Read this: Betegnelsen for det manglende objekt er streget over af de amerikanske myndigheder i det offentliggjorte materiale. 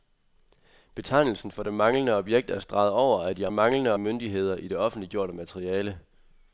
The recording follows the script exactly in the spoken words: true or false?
false